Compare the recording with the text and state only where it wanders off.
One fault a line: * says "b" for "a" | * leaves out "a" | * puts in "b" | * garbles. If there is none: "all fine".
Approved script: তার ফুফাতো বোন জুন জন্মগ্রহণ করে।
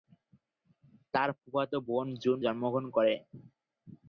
all fine